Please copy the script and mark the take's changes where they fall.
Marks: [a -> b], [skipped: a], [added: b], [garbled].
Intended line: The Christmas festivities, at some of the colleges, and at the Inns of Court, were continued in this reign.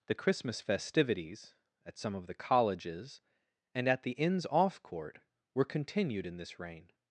The Christmas festivities, at some of the colleges, and at the Inns [of -> off] Court, were continued in this reign.